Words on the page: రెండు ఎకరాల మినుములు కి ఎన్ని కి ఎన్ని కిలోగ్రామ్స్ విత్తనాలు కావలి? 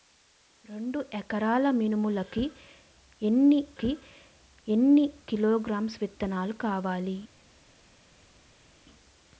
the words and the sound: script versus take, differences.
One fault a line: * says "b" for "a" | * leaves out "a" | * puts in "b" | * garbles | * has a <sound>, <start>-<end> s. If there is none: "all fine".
all fine